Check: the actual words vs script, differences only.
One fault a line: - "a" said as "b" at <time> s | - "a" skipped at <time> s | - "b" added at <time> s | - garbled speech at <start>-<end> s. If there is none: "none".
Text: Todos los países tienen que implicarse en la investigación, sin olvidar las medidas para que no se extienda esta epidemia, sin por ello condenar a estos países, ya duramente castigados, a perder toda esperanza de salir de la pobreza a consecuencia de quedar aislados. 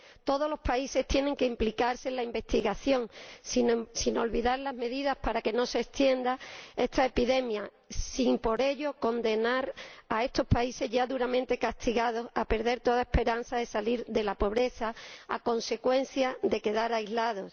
none